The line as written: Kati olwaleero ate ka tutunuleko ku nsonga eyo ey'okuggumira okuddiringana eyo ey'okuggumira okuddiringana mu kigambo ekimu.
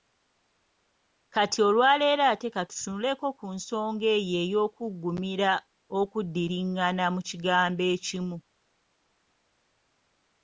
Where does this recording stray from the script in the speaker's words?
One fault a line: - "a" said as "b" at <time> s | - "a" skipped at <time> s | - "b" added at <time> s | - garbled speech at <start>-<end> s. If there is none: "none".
- "eyo ey'okuggumira okuddiringana" skipped at 7.0 s